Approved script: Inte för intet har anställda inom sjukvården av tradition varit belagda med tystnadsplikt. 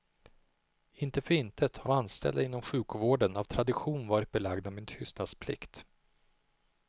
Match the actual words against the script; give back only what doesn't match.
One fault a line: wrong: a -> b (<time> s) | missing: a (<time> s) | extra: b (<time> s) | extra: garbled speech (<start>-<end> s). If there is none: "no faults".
no faults